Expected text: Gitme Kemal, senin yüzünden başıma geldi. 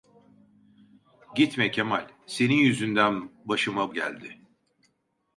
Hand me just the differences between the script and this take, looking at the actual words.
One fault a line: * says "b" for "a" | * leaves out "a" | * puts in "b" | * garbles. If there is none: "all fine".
all fine